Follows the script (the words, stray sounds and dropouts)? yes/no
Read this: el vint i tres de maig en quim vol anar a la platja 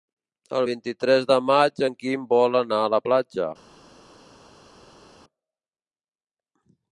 yes